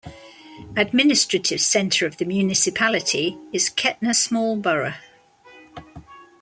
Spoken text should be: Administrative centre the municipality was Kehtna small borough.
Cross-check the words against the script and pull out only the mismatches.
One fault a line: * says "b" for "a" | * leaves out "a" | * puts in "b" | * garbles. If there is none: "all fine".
* puts in "of"
* says "is" for "was"